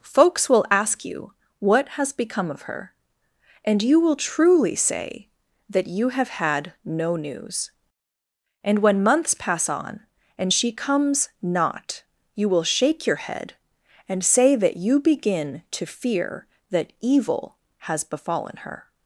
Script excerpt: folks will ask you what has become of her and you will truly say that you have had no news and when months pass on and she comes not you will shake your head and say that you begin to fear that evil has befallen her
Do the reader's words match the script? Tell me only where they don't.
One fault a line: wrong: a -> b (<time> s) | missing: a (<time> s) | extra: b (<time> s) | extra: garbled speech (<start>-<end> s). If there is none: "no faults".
no faults